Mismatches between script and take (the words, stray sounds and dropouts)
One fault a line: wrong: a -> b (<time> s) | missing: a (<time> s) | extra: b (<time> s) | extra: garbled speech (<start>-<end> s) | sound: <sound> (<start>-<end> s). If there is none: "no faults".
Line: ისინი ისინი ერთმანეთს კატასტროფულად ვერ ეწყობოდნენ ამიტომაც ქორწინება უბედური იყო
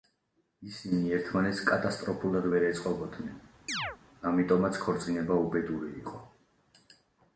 missing: ისინი (1.1 s)
sound: chirp (3.7-4.0 s)